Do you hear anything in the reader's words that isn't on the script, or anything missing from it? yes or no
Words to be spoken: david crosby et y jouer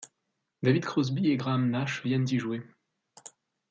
yes